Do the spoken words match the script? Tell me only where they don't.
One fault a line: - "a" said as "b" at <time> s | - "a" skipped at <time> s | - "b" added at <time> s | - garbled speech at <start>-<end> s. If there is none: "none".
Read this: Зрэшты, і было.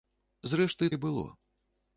none